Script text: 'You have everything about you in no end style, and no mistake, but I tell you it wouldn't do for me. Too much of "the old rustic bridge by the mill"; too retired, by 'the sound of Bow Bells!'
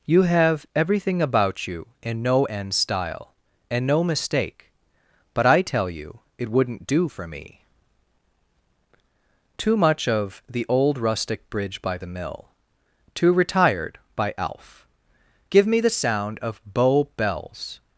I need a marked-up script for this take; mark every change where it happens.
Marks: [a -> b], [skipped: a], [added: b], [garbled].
'You have everything about you in no end style, and no mistake, but I tell you it wouldn't do for me. Too much of "the old rustic bridge by the mill"; too retired, by [added: alf Give me] 'the sound of Bow Bells!'